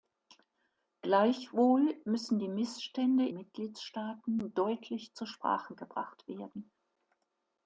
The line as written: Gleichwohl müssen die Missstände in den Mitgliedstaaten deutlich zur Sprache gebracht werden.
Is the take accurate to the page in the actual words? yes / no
no